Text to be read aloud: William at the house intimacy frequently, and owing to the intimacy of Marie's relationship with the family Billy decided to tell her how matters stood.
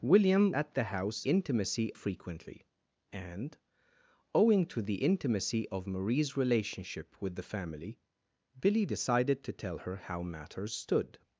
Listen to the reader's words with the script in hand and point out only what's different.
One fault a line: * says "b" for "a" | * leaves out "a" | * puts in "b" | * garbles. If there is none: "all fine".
all fine